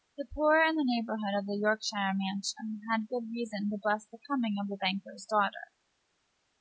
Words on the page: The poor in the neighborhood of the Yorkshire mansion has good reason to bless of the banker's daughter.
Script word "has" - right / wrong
wrong